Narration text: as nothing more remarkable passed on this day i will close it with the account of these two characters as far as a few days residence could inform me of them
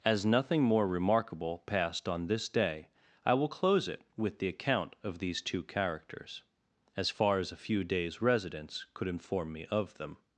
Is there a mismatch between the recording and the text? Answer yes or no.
no